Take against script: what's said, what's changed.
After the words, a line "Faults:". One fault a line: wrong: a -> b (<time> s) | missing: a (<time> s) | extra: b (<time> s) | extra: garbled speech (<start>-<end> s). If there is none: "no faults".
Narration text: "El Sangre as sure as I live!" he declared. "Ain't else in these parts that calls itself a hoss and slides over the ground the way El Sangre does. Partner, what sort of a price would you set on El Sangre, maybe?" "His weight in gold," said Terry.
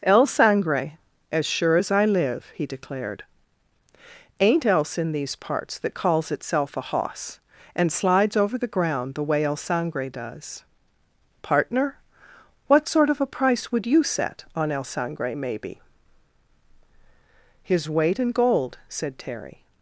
"El Sangre as sure as I live!" he declared. "Ain't else in these parts that calls itself a hoss and slides over the ground the way El Sangre does. Partner, what sort of a price would you set on El Sangre, maybe?" "His weight in gold," said Terry.
Faults:
no faults